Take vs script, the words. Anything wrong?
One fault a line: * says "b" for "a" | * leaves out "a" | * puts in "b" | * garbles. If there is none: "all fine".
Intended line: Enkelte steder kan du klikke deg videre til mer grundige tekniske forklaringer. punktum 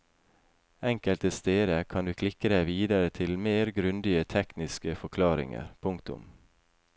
all fine